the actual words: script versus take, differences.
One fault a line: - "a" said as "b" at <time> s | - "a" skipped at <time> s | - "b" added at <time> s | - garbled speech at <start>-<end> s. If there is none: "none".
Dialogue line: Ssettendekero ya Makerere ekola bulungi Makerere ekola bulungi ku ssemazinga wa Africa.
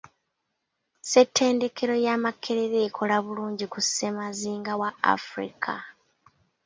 - "Makerere ekola bulungi" skipped at 3.6 s